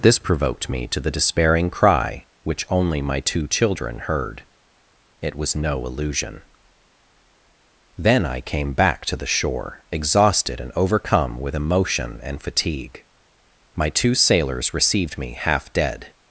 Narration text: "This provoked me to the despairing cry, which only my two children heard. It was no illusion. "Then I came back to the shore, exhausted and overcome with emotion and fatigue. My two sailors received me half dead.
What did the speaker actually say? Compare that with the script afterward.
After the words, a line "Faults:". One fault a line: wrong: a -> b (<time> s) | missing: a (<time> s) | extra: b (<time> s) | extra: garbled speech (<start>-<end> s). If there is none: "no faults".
"This provoked me to the despairing cry, which only my two children heard. It was no illusion. "Then I came back to the shore, exhausted and overcome with emotion and fatigue. My two sailors received me half dead.
Faults:
no faults